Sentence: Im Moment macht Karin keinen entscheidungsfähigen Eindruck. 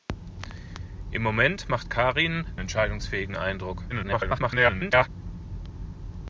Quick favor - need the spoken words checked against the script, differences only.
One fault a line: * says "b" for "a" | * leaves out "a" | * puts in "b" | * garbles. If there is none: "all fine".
* leaves out "keinen"
* garbles